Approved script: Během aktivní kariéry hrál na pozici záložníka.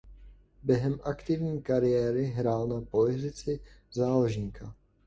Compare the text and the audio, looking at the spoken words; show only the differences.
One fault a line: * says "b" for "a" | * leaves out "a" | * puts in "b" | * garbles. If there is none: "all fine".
all fine